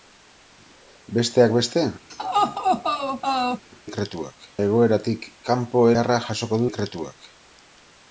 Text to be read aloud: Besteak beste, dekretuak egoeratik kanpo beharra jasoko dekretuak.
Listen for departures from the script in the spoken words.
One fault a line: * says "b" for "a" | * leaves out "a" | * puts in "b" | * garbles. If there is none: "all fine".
all fine